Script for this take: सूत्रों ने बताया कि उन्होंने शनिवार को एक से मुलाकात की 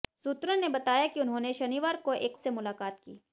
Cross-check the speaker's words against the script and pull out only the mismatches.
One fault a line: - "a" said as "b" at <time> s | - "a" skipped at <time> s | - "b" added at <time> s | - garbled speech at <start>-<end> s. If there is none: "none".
none